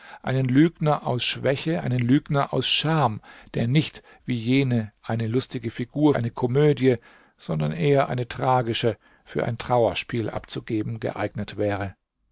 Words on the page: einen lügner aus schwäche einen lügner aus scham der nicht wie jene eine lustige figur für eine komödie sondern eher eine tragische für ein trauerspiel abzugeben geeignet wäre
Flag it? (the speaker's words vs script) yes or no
yes